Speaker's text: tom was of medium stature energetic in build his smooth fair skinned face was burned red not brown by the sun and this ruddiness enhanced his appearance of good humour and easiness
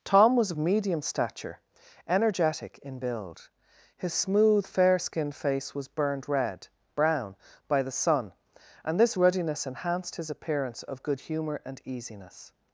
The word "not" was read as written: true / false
false